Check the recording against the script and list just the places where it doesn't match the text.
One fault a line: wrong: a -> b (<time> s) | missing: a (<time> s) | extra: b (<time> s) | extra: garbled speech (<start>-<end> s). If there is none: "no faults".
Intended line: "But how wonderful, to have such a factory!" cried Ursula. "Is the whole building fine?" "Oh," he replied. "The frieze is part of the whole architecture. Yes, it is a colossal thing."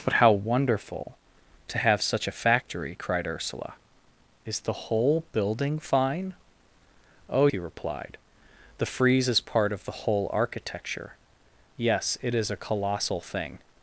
no faults